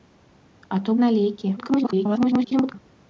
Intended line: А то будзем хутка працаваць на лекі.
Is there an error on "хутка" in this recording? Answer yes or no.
yes